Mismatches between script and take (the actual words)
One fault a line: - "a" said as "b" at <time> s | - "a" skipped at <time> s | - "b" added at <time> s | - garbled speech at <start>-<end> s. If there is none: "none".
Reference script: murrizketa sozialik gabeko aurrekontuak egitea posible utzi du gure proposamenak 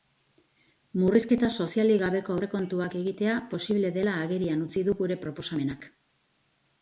- "dela agerian" added at 4.0 s